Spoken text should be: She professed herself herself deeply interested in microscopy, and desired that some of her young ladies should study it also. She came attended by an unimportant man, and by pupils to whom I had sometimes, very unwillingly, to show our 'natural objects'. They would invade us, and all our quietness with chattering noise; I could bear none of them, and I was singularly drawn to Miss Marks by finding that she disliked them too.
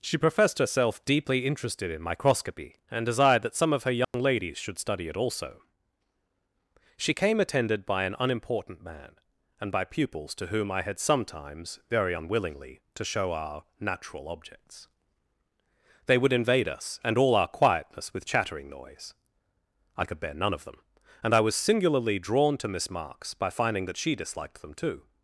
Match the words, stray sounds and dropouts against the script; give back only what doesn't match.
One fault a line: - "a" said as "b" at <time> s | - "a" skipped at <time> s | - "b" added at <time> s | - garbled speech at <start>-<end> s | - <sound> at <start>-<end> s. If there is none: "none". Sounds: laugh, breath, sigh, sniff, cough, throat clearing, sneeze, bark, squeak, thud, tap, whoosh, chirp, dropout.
- "herself" skipped at 1.1 s
- dropout at 4.0-4.1 s